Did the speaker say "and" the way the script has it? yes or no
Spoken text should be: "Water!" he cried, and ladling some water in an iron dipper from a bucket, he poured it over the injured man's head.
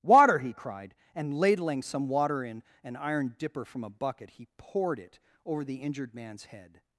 yes